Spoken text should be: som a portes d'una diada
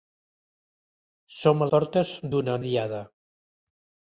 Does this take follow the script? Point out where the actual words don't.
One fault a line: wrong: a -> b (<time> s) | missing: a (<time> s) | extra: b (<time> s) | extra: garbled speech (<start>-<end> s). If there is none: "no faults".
no faults